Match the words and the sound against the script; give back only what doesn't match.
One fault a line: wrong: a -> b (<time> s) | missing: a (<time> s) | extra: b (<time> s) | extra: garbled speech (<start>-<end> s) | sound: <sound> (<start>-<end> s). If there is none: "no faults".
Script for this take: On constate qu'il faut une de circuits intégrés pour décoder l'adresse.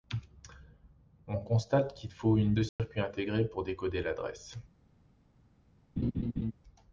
sound: dropout (2.7-2.8 s)
sound: laugh (6.0-6.5 s)